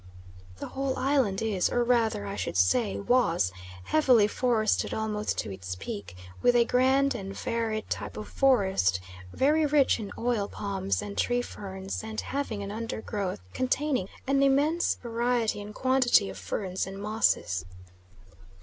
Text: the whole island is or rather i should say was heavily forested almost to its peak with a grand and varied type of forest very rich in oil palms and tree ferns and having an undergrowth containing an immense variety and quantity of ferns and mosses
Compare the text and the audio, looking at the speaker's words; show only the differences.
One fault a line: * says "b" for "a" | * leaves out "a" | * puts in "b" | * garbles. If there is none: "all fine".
all fine